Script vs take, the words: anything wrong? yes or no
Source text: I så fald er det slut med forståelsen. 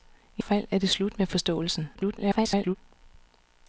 yes